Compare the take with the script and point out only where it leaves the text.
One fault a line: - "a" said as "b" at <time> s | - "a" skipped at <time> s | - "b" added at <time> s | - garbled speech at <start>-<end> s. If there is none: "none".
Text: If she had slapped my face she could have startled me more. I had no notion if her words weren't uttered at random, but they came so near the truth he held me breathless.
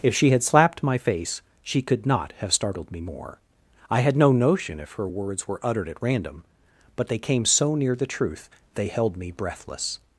- "not" added at 2.1 s
- "weren't" said as "were" at 5.5 s
- "he" said as "they" at 8.8 s